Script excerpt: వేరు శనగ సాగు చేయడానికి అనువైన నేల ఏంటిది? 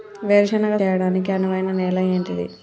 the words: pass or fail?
fail